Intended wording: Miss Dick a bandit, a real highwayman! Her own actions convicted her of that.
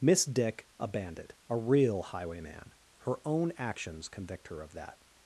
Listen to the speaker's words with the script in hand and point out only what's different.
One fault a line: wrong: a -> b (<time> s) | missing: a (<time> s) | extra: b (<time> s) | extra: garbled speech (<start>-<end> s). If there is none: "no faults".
wrong: convicted -> convict (4.1 s)